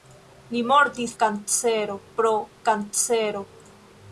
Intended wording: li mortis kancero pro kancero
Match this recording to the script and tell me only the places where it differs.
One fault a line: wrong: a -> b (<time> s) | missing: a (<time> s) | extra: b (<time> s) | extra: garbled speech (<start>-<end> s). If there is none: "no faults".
no faults